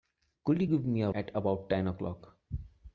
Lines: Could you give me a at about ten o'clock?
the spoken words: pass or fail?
pass